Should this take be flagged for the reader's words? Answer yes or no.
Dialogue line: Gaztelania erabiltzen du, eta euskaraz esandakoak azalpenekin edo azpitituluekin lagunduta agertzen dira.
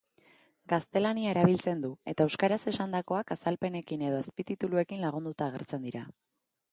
no